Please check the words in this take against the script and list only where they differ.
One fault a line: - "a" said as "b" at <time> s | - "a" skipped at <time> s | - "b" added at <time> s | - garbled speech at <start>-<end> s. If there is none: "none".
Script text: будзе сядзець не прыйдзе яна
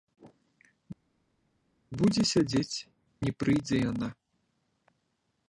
none